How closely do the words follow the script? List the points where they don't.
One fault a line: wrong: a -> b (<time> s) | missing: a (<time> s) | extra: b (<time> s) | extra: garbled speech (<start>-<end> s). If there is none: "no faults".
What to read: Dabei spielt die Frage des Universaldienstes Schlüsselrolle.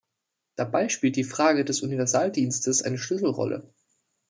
extra: eine (2.8 s)